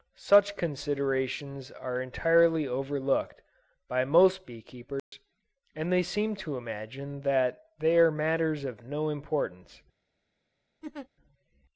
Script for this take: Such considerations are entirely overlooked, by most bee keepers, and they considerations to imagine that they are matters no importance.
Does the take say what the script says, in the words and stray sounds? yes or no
no